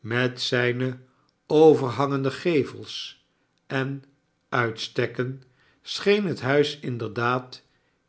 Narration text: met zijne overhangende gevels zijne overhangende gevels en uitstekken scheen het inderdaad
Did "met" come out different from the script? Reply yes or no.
no